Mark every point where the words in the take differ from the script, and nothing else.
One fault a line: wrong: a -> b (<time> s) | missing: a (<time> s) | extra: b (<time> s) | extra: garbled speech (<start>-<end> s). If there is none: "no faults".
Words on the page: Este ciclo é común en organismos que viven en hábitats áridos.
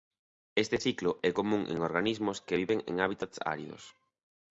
no faults